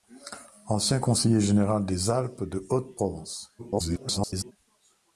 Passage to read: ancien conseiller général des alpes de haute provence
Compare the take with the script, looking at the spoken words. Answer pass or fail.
fail